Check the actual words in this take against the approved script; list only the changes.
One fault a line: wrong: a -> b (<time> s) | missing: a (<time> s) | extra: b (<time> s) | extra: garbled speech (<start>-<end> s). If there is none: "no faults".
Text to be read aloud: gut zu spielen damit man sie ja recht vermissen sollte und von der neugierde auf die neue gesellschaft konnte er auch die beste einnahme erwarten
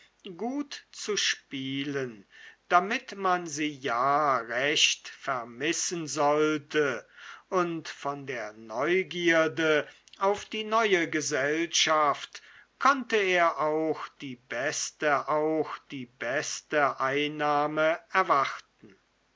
extra: auch die beste (15.3 s)